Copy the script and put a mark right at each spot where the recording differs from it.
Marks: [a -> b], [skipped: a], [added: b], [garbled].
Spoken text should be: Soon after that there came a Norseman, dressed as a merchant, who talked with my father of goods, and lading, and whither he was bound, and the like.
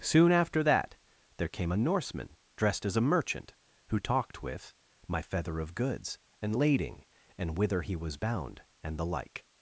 Soon after that there came a Norseman, dressed as a merchant, who talked with my [father -> feather] of goods, and lading, and whither he was bound, and the like.